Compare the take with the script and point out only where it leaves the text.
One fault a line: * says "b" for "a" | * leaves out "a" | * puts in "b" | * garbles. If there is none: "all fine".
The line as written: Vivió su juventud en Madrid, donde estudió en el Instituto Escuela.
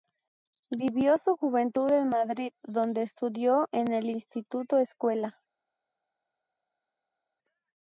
all fine